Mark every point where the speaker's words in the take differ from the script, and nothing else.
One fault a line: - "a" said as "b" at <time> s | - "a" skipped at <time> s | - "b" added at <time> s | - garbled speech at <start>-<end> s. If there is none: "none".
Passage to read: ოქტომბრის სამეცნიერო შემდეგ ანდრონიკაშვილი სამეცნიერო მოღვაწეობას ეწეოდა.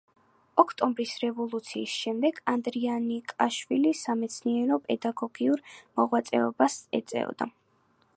- "სამეცნიერო" said as "რევოლუციის" at 1.2 s
- "პედაგოგიურ" added at 4.9 s